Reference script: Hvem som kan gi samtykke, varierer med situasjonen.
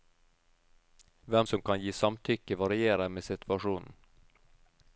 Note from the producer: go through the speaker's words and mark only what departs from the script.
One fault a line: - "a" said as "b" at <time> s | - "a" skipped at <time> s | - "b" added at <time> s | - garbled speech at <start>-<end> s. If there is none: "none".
none